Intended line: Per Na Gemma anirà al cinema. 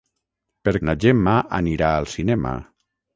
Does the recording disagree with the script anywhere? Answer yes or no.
no